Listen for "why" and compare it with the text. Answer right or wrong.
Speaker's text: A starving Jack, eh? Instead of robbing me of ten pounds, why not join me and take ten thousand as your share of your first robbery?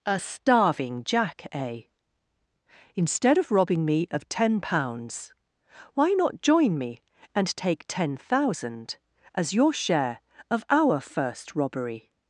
right